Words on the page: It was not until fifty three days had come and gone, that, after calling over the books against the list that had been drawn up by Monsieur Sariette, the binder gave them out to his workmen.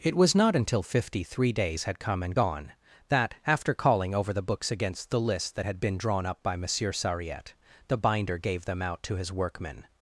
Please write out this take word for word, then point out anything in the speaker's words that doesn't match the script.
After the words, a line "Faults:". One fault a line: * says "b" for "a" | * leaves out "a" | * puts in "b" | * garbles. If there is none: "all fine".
It was not until fifty three days had come and gone, that, after calling over the books against the list that had been drawn up by Monsieur Sariette, the binder gave them out to his workmen.
Faults:
all fine